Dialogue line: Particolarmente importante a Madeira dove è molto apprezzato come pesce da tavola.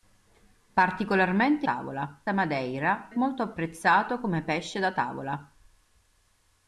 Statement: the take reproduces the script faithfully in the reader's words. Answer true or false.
false